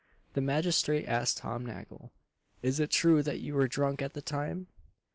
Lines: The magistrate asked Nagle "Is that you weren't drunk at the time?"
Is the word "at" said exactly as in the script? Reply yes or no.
yes